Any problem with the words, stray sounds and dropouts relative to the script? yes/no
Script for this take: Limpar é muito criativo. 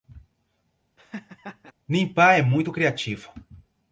yes